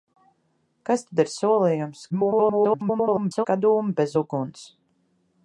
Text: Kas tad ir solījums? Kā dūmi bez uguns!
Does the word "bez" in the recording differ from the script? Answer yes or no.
no